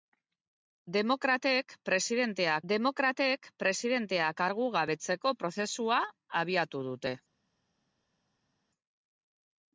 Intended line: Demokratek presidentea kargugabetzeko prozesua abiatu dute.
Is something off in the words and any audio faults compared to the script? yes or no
yes